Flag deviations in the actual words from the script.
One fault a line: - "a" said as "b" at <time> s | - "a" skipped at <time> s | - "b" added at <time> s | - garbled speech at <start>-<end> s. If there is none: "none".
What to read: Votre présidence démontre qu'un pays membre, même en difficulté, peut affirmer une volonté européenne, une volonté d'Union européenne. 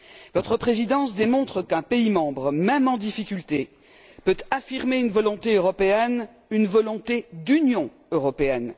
none